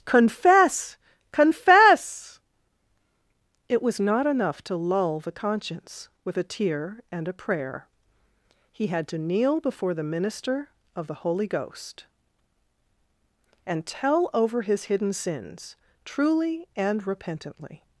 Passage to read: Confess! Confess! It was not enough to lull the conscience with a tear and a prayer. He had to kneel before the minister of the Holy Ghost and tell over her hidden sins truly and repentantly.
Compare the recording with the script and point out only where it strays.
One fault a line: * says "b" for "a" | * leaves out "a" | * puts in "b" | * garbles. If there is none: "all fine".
* says "his" for "her"